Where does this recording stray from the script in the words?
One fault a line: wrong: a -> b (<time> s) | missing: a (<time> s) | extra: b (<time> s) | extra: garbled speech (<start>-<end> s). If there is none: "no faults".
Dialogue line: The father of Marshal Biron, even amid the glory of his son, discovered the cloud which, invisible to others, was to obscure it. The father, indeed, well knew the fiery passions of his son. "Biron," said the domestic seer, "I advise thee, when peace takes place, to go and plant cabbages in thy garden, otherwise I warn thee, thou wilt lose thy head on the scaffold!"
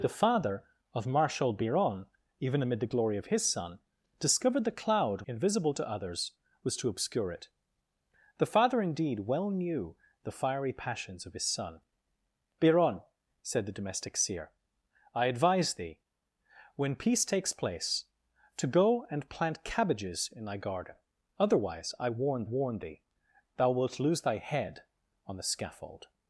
missing: which (5.2 s)
extra: warn (22.4 s)